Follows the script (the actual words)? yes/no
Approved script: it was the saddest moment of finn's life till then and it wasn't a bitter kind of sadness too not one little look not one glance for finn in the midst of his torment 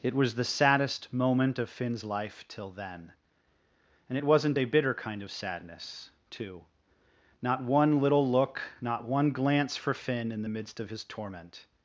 yes